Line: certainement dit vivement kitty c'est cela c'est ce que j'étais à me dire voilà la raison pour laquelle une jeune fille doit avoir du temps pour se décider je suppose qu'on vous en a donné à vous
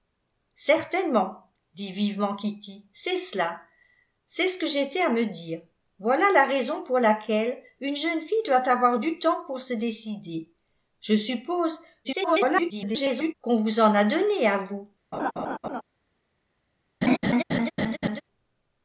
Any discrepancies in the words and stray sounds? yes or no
yes